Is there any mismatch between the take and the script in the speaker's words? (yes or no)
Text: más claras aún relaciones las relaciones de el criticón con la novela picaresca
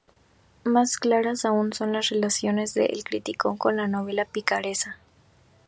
yes